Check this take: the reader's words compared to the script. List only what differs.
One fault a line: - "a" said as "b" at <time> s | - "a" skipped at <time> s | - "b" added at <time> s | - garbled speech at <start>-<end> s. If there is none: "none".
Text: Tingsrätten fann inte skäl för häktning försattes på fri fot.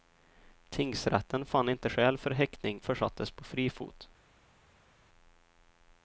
none